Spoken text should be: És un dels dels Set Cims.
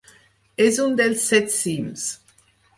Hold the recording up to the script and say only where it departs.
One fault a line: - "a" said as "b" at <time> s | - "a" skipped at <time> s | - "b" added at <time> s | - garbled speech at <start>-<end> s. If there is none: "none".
- "dels" skipped at 1.3 s